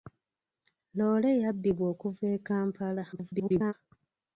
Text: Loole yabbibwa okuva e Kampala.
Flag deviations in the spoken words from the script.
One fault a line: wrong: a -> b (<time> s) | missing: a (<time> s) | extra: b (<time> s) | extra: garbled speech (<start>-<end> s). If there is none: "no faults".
extra: garbled speech (3.1-3.7 s)